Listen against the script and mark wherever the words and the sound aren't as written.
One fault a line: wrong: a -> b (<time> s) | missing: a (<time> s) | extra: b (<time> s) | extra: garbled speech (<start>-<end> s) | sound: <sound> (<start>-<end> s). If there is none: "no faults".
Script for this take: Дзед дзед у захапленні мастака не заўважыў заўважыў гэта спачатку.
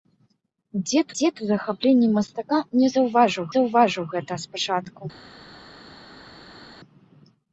no faults